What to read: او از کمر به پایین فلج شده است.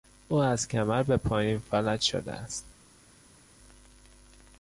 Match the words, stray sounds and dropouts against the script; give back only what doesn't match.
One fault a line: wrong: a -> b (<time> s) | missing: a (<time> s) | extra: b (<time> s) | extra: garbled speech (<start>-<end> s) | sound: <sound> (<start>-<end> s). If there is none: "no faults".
no faults